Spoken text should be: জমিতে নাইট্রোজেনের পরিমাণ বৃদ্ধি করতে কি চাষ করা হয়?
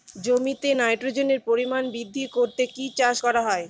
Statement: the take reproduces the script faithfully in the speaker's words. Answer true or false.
true